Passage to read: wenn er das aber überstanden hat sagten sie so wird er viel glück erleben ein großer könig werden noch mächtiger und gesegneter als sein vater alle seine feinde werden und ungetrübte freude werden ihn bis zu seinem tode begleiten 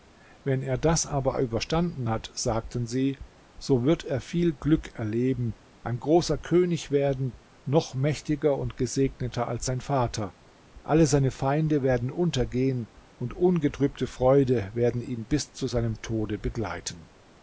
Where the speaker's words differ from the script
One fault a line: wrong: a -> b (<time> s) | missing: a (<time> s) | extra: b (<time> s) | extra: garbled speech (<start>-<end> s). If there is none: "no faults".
extra: untergehen (12.1 s)